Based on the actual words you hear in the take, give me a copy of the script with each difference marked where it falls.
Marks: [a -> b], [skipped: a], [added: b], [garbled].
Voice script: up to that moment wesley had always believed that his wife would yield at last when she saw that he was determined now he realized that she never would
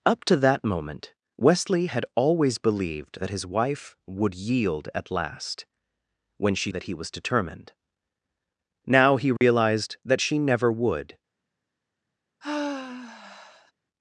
up to that moment wesley had always believed that his wife would yield at last when she [skipped: saw] that he was determined now he realized that she never would